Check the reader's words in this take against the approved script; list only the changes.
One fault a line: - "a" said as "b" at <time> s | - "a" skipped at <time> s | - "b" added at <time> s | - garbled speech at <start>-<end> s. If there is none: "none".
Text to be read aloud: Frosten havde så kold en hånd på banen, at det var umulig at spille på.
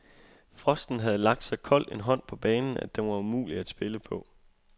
- "lagt" added at 1.2 s
- "det" said as "den" at 3.0 s